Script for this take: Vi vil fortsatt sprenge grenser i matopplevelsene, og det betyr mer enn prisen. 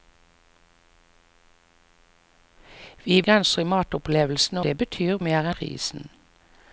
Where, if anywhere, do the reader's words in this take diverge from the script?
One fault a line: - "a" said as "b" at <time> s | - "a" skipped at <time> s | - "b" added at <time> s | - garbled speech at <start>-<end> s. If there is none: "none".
- "vil fortsatt sprenge" skipped at 3.2 s
- "og" skipped at 4.6 s
- "enn" skipped at 5.5 s